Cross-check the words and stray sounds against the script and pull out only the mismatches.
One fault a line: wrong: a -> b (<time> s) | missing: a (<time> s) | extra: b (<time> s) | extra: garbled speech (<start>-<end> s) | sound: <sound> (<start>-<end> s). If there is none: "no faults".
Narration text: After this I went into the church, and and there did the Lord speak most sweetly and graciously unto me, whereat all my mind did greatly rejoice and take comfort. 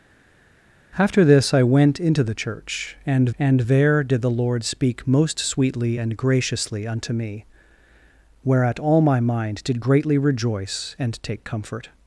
no faults